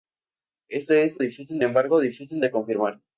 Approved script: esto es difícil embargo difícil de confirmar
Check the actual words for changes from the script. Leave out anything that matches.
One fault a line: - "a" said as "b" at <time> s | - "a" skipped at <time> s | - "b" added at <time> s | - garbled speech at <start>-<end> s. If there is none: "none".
none